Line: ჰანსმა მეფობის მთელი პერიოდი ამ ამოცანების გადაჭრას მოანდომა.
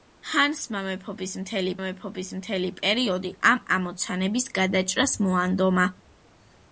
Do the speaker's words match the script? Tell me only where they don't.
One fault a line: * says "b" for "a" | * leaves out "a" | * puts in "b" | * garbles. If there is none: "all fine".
* puts in "მეფობის მთელი"